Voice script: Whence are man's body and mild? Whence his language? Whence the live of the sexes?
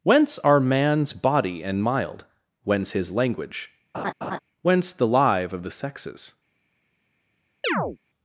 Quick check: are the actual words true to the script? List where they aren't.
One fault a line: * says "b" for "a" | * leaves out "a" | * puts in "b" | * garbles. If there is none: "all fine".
all fine